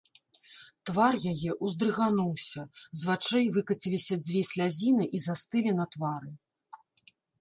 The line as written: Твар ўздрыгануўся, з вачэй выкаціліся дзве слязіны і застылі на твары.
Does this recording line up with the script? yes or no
no